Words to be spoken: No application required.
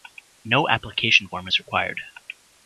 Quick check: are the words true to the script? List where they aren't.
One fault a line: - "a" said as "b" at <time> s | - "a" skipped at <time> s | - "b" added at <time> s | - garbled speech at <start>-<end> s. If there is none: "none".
- "form is" added at 1.3 s